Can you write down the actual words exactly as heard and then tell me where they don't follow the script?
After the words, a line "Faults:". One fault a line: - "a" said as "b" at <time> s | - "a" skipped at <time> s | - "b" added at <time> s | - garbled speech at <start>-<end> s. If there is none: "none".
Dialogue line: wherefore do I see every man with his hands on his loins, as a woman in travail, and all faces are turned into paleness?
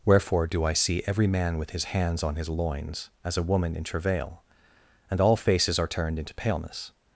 wherefore do I see every man with his hands on his loins, as a woman in travail, and all faces are turned into paleness?
Faults:
none